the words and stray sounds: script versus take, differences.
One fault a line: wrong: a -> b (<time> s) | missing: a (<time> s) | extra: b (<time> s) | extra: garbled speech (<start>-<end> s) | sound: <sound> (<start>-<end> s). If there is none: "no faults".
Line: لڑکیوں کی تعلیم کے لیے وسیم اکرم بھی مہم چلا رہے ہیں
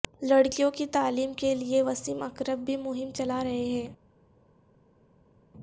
no faults